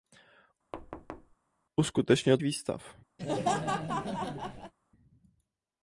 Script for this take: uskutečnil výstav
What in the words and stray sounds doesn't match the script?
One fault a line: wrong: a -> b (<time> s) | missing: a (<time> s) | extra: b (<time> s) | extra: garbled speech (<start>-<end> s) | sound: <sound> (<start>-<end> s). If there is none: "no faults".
sound: thud (0.7-1.4 s)
sound: laugh (3.2-4.7 s)